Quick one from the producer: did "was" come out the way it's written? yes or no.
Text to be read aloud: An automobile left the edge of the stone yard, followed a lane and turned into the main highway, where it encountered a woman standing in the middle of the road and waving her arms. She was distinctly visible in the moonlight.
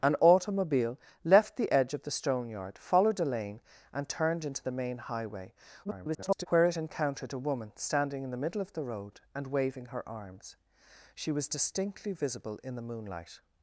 yes